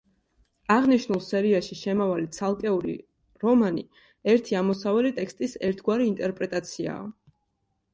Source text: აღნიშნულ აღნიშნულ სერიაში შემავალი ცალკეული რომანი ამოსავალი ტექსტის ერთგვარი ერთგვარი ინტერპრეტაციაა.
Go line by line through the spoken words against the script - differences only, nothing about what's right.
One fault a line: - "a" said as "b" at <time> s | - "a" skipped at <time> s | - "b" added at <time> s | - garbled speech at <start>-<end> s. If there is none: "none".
- "აღნიშნულ" skipped at 1.2 s
- "ერთი" added at 4.4 s
- "ერთგვარი" skipped at 6.1 s